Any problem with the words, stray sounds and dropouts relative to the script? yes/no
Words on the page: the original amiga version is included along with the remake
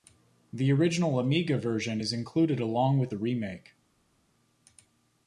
no